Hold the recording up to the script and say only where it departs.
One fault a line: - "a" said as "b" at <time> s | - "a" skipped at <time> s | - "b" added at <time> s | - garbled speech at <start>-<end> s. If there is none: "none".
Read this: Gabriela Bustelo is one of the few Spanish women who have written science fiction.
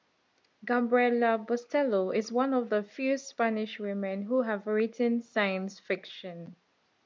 none